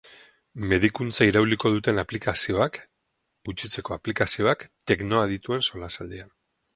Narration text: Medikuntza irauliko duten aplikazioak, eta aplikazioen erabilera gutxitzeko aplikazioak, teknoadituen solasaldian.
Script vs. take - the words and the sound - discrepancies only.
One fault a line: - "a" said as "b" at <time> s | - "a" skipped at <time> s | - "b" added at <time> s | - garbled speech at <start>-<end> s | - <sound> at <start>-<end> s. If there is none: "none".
- "eta aplikazioen erabilera" skipped at 2.8 s